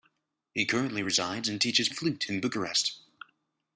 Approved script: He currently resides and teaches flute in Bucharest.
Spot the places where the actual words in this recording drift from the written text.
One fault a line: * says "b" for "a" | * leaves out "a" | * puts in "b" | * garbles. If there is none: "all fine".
all fine